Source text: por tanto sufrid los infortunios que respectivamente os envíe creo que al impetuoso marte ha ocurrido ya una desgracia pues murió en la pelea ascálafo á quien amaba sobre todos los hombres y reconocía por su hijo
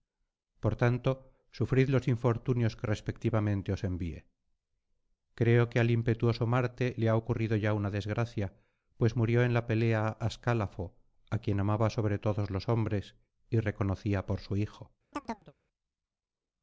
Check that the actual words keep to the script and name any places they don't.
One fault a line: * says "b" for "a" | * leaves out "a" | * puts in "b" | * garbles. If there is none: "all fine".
* puts in "le"